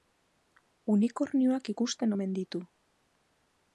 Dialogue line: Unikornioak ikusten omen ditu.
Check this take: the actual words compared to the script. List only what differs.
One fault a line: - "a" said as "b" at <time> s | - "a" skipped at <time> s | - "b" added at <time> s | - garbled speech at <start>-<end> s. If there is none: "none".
none